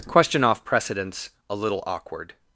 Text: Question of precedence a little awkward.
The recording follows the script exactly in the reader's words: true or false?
false